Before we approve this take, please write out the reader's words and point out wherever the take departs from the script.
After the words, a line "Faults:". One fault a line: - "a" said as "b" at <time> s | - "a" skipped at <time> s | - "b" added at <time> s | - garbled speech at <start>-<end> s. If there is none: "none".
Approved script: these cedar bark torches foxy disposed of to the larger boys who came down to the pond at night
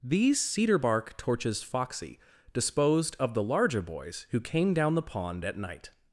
these cedar bark torches foxy disposed of the larger boys who came down the pond at night
Faults:
- "to" skipped at 3.3 s
- "to" skipped at 4.9 s